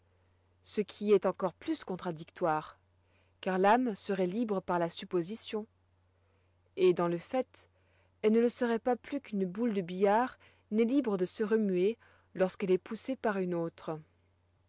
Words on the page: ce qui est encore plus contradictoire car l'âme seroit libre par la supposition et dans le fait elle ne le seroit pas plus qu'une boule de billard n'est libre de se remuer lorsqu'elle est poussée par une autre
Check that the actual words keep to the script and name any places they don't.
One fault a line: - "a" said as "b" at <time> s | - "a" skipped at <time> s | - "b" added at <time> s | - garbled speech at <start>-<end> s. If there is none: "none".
none